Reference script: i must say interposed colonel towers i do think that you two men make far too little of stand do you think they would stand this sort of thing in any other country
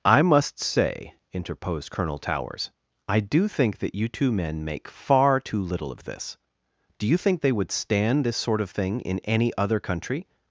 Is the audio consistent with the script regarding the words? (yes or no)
no